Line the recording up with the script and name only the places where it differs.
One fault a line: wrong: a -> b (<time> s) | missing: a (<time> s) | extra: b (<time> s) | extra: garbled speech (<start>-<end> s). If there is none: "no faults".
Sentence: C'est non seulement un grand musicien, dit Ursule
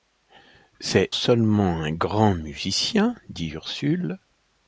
missing: non (1.1 s)